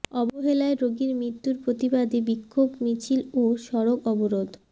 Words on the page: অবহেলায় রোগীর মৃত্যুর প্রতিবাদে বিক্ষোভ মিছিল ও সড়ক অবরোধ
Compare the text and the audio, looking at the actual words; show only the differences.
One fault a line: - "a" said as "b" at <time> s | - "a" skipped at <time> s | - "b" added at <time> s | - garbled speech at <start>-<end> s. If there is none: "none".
none